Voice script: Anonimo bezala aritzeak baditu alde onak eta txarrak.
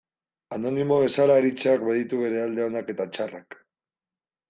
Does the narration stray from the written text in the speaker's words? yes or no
yes